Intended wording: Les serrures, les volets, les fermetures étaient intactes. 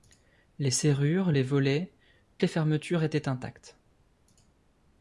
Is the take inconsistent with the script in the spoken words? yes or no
no